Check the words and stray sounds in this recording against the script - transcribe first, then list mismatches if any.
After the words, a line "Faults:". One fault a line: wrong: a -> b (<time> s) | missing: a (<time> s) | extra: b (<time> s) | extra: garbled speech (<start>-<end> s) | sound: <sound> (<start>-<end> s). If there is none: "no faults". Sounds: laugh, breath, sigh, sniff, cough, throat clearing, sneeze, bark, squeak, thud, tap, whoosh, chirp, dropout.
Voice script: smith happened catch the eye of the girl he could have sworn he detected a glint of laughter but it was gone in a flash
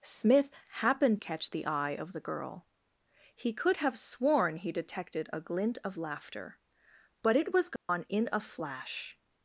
smith happened catch the eye of the girl he could have sworn he detected a glint of laughter but it was gone in a flash
Faults:
sound: dropout (7.8-7.9 s)